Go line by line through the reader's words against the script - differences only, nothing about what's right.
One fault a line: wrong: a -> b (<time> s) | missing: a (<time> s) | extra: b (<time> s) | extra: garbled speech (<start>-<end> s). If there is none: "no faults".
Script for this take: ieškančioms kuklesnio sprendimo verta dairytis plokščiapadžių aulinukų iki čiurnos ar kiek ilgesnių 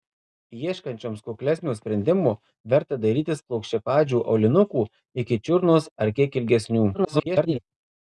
extra: garbled speech (6.9-7.6 s)